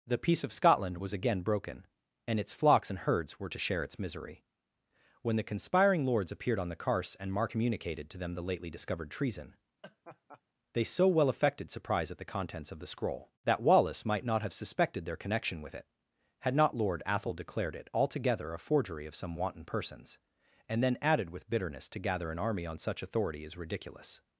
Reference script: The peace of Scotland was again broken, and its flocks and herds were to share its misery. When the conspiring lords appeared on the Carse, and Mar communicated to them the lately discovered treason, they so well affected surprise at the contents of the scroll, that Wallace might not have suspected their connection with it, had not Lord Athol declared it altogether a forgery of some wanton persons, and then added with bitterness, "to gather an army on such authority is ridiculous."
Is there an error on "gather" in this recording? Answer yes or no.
no